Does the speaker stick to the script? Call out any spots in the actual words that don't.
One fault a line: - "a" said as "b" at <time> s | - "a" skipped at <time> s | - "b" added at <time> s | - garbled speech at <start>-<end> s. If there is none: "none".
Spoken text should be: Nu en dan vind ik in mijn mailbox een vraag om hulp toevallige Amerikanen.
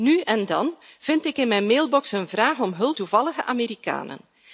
none